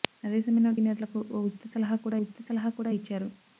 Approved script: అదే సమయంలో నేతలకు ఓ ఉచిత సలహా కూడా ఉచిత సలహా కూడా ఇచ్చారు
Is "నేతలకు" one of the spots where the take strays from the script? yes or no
no